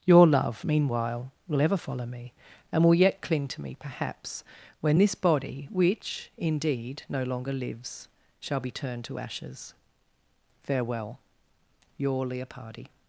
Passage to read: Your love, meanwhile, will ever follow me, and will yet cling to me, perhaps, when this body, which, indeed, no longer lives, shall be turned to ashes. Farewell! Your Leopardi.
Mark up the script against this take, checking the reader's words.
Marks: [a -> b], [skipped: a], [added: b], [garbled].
Your love, meanwhile, will ever follow me, and will yet cling to me, perhaps, when this body, which, indeed, no longer lives, shall be turned to ashes. Farewell! Your Leopardi.